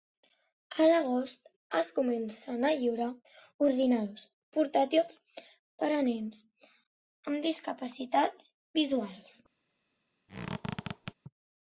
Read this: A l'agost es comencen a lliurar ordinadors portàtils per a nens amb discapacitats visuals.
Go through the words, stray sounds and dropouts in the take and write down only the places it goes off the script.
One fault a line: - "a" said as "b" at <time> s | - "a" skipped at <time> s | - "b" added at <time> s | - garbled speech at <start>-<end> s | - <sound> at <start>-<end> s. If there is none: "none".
- squeak at 10.3-11.1 s